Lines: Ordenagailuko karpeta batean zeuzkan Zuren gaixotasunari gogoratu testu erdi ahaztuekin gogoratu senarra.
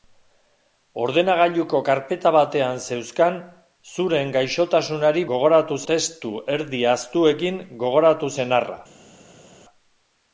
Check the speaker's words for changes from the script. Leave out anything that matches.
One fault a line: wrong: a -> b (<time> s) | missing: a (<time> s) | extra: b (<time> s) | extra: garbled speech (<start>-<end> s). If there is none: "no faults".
no faults